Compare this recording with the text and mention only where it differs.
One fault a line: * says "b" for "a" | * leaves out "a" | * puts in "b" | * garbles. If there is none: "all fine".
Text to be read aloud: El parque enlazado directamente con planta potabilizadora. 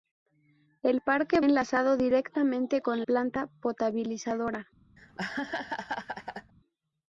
all fine